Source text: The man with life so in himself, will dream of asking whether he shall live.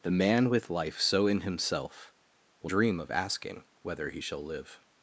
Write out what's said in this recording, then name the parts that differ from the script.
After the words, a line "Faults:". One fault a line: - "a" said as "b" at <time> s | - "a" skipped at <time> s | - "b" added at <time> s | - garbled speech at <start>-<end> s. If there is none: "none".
The man with life so in himself, will dream of asking whether he shall live.
Faults:
none